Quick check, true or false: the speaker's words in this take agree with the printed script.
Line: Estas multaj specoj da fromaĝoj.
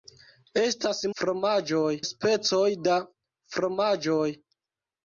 false